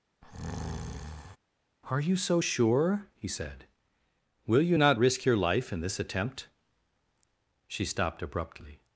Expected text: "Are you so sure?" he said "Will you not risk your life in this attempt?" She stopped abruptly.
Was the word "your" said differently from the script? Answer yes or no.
no